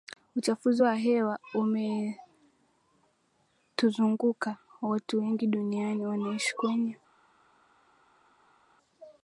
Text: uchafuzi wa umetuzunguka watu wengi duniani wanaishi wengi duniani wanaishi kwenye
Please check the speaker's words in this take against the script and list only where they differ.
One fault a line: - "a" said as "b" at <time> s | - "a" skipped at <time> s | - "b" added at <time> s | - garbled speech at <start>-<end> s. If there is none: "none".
- "hewa" added at 0.9 s
- "wengi duniani wanaishi" skipped at 6.6 s